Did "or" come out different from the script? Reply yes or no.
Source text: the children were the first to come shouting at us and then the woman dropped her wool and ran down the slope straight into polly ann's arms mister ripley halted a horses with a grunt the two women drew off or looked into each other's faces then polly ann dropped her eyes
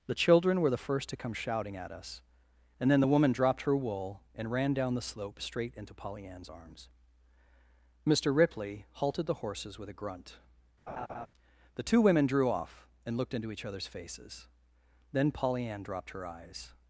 yes